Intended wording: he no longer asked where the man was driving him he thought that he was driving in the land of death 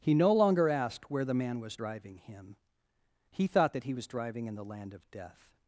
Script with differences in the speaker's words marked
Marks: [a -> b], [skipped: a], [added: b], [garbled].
he no longer asked where the man was driving him he thought that he was driving in the land of death